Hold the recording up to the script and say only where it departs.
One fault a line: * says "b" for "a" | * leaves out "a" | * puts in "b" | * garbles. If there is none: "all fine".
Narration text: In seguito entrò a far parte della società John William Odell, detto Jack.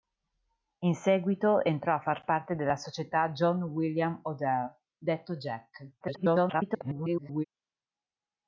* garbles